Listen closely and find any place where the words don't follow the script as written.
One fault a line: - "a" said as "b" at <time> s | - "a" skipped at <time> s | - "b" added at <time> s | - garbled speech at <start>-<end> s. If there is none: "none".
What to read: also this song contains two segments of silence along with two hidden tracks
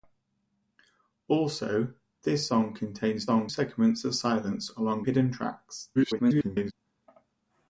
- "two" said as "song" at 3.2 s
- "with two" skipped at 5.0 s
- garbled speech at 5.9-6.7 s